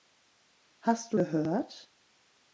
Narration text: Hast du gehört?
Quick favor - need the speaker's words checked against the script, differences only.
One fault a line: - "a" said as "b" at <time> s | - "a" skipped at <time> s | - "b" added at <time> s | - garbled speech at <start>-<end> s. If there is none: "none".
none